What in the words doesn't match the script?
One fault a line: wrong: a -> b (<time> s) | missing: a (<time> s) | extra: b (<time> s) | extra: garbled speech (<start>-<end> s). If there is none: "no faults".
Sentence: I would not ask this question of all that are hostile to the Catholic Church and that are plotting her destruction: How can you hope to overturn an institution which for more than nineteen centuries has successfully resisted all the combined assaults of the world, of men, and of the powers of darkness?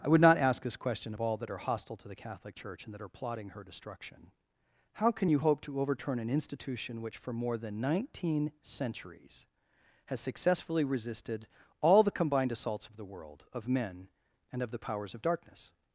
no faults